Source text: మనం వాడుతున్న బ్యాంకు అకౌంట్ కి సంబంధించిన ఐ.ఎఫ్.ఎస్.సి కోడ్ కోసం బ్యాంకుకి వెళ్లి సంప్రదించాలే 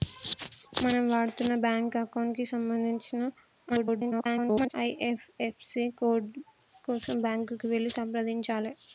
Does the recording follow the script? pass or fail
fail